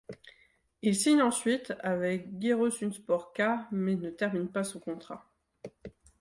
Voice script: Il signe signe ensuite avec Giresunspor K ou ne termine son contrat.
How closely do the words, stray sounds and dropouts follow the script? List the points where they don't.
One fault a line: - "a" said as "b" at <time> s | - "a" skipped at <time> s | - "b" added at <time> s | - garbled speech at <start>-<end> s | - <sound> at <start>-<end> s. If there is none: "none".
- "signe" skipped at 1.2 s
- "ou" said as "mais" at 3.7 s
- "pas" added at 4.5 s